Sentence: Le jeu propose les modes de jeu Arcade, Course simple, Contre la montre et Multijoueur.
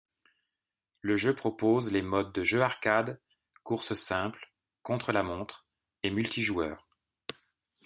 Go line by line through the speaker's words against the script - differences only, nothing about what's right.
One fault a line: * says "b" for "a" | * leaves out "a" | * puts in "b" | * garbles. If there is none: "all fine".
all fine